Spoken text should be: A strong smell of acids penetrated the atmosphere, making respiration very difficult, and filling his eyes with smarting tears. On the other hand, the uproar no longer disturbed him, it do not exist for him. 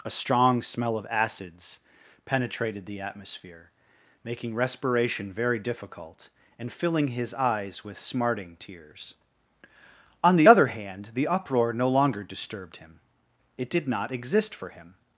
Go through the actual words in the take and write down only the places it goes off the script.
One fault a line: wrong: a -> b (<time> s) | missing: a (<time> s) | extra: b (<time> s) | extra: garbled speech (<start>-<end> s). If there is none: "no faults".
wrong: do -> did (13.7 s)